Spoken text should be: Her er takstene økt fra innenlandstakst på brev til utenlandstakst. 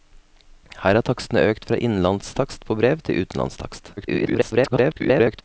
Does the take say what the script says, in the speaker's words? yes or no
no